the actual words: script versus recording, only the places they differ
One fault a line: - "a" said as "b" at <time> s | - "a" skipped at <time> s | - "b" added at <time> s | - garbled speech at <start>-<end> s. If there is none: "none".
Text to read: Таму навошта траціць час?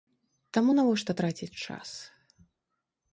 none